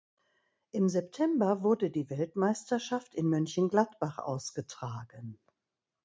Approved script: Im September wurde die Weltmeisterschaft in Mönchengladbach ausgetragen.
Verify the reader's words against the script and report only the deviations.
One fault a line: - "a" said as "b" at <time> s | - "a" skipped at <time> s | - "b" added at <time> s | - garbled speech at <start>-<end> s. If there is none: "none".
none